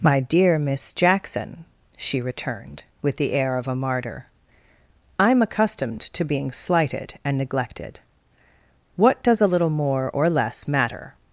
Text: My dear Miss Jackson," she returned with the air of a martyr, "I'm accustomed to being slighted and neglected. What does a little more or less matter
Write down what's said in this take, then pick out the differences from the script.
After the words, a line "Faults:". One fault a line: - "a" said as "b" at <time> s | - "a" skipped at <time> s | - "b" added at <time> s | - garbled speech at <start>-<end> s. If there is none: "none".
My dear Miss Jackson," she returned with the air of a martyr, "I'm accustomed to being slighted and neglected. What does a little more or less matter
Faults:
none